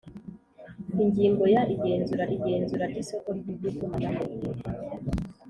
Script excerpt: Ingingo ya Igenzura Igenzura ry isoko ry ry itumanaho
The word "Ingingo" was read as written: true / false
true